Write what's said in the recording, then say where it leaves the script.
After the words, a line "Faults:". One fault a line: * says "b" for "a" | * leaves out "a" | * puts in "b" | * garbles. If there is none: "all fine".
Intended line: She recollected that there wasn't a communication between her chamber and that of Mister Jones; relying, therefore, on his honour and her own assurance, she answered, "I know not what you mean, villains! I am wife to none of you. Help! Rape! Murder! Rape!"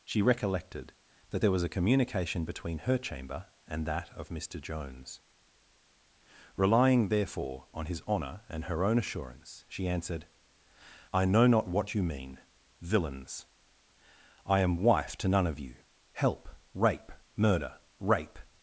She recollected that there was a communication between her chamber and that of Mister Jones; relying, therefore, on his honour and her own assurance, she answered, "I know not what you mean, villains! I am wife to none of you. Help! Rape! Murder! Rape!"
Faults:
* says "was" for "wasn't"